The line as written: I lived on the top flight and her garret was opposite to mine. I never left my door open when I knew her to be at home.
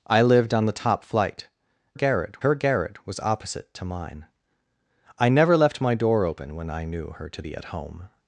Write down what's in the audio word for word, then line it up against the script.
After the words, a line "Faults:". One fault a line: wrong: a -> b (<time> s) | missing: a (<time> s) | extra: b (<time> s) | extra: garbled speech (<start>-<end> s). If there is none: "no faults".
I lived on the top flight garret her garret was opposite to mine. I never left my door open when I knew her to be at home.
Faults:
wrong: and -> garret (1.9 s)